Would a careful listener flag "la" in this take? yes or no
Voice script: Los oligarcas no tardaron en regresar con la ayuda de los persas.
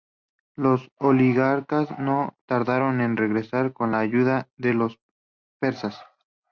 no